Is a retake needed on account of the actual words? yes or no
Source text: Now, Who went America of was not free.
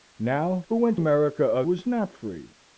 no